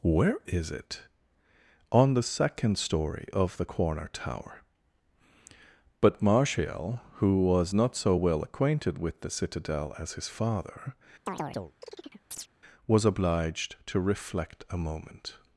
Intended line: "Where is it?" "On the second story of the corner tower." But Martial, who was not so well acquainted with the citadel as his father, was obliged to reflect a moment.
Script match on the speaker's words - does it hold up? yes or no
yes